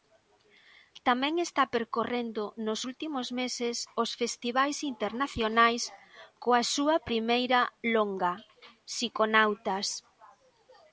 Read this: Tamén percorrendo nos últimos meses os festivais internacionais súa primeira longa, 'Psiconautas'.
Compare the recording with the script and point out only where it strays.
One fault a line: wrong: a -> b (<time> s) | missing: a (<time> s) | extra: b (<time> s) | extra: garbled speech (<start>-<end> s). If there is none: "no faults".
extra: está (1.5 s)
extra: coa (6.4 s)